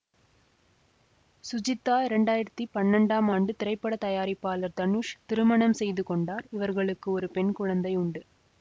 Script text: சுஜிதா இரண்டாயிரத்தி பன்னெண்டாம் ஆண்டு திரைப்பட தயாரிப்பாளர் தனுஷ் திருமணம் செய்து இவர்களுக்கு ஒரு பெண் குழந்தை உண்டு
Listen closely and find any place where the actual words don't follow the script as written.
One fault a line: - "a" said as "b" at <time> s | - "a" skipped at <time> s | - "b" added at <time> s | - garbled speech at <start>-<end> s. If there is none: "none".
- "கொண்டார்" added at 6.0 s